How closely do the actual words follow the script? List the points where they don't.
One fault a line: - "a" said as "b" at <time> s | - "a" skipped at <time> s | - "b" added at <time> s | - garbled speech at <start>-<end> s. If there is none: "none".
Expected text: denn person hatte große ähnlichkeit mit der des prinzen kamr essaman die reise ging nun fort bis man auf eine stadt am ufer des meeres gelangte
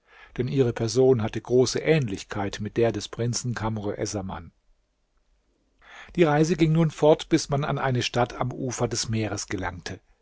- "ihre" added at 0.5 s
- "auf" said as "an" at 7.7 s